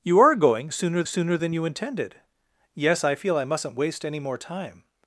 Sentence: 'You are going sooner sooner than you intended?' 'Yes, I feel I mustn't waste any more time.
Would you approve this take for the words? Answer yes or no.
yes